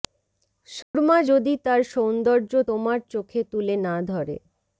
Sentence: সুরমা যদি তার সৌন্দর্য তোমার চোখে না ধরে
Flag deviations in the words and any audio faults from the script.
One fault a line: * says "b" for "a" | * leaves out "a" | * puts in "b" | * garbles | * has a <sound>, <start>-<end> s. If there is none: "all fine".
* has a dropout, 0.8-0.9 s
* puts in "তুলে"